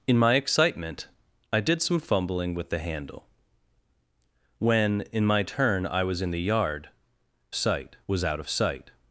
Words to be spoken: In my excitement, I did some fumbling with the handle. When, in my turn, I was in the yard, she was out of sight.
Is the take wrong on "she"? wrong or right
wrong